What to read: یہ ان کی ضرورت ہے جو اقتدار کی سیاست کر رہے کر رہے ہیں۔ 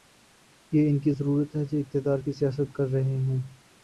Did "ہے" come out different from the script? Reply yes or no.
no